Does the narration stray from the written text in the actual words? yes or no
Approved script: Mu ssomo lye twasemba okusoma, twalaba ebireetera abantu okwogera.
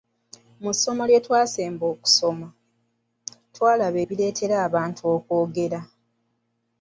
no